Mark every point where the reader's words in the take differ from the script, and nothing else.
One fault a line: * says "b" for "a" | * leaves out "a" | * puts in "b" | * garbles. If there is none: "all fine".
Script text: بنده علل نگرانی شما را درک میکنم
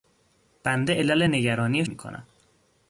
* leaves out "شما را درک"